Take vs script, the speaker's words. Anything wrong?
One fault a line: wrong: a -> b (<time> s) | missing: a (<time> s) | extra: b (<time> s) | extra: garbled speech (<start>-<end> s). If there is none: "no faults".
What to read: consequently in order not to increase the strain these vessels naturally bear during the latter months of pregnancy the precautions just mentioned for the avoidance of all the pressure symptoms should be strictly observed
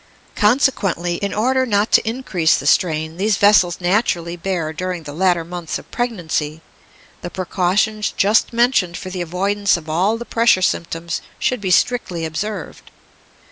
no faults